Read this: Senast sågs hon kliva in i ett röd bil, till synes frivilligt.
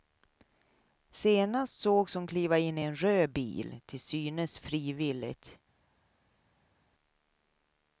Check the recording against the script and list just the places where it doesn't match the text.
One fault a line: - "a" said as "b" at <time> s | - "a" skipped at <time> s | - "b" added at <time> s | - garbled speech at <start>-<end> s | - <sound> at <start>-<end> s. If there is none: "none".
- "ett" said as "en" at 2.8 s